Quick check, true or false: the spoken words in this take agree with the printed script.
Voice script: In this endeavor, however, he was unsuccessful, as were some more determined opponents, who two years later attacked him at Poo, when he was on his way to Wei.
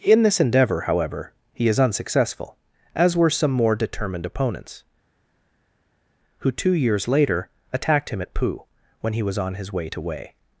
false